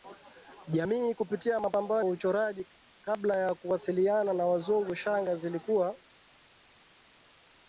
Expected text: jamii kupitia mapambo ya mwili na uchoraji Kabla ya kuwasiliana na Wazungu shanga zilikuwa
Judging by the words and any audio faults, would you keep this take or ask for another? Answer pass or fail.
fail